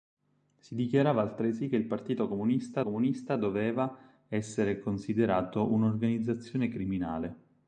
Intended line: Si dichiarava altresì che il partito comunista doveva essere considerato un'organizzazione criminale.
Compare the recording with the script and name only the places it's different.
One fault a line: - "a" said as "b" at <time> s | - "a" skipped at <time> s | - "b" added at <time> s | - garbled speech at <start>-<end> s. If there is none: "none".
- "comunista" added at 2.8 s